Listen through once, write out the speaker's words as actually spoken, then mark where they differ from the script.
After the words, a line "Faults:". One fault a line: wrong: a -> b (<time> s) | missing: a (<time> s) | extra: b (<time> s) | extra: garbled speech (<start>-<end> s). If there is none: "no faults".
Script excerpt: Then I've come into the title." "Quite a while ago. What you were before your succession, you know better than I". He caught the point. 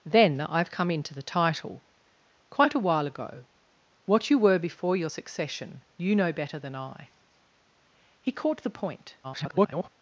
Then I've come into the title." "Quite a while ago. What you were before your succession, you know better than I". He caught the point. [garbled]
Faults:
extra: garbled speech (9.2-9.9 s)